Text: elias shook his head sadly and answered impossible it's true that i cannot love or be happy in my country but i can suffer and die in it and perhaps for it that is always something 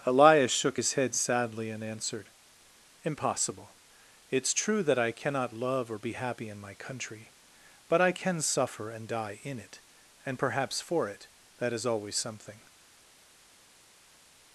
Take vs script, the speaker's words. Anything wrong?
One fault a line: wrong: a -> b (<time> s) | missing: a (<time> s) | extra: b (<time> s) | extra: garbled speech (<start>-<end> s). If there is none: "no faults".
no faults